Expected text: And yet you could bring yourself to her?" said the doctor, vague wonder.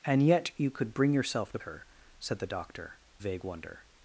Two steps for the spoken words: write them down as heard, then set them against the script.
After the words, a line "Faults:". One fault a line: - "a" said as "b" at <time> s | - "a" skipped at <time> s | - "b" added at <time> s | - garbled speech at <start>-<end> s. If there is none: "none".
And yet you could bring yourself to her?" said the doctor, vague wonder.
Faults:
none